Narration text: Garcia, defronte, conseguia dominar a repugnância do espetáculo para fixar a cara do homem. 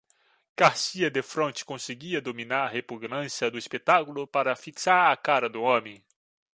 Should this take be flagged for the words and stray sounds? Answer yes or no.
no